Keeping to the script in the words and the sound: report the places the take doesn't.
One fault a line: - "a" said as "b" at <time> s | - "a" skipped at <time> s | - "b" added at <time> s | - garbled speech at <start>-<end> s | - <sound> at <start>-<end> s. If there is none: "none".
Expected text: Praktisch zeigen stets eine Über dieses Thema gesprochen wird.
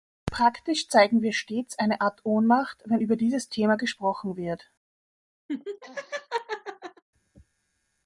- "wir" added at 1.2 s
- "Art Ohnmacht wenn" added at 2.0 s
- laugh at 5.5-7.0 s